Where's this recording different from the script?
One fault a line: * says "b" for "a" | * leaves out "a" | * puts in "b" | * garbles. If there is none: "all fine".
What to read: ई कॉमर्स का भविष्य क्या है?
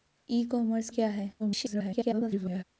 * leaves out "का भविष्य"
* garbles